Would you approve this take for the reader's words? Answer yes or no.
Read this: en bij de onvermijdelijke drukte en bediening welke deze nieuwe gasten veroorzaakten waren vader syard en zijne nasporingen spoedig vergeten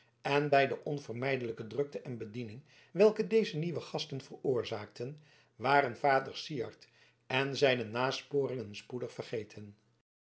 yes